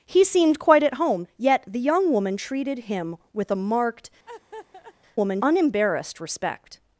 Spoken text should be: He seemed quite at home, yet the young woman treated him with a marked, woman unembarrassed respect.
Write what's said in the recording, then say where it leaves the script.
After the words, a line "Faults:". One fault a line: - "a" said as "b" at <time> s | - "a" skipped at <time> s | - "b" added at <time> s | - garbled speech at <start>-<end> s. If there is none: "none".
He seemed quite at home, yet the young woman treated him with a marked, woman unembarrassed respect.
Faults:
none